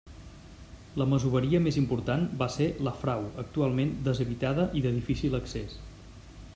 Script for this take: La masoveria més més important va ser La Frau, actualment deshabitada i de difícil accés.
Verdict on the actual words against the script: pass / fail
fail